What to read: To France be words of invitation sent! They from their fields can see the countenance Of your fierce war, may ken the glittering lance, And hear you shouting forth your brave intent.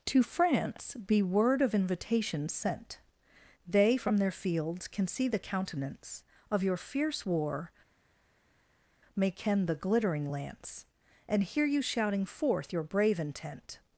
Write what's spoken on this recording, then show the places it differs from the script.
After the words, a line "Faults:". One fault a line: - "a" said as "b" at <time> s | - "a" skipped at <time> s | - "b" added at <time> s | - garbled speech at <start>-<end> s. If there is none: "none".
To France be word of invitation sent! They from their fields can see the countenance Of your fierce war, may ken the glittering lance, And hear you shouting forth your brave intent.
Faults:
- "words" said as "word" at 1.2 s